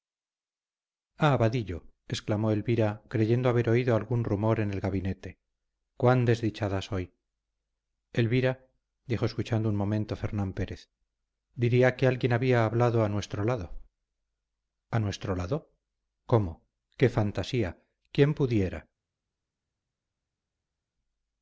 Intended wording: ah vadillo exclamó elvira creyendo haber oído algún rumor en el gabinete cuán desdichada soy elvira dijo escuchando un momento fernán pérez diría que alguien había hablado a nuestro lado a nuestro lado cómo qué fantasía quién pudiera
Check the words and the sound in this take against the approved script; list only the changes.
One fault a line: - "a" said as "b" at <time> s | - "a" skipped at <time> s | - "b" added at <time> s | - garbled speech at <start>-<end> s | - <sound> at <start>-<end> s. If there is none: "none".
none